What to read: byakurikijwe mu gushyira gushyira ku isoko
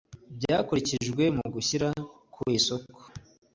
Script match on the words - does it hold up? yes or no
no